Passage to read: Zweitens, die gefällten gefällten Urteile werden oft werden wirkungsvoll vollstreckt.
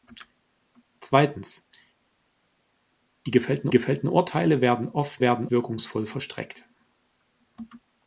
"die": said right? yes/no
yes